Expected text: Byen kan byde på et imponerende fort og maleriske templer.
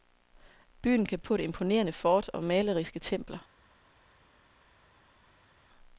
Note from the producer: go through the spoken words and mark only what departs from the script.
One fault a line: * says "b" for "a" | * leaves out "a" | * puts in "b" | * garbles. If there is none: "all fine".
* leaves out "byde"